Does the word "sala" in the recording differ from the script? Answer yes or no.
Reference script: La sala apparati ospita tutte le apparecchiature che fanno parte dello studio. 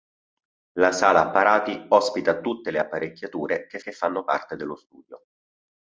no